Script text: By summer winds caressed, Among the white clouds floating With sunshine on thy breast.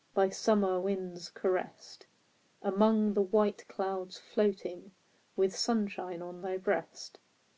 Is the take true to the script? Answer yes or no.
yes